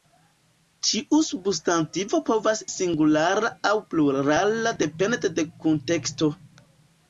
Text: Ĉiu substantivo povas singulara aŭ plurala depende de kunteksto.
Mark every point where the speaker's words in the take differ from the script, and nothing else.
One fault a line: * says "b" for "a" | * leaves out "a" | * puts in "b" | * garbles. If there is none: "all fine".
all fine